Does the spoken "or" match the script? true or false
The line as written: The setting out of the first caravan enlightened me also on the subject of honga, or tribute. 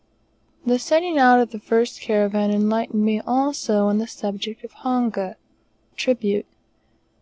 false